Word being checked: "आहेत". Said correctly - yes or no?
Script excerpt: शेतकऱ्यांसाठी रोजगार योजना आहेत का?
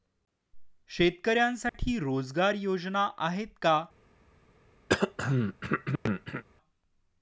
yes